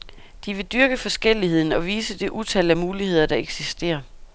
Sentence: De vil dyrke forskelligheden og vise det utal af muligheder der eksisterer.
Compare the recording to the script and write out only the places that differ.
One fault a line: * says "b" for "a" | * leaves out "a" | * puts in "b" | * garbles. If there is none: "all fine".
all fine